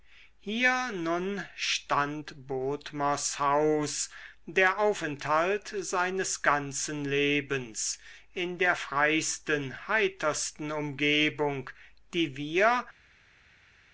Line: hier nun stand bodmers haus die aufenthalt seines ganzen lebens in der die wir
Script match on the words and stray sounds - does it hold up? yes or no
no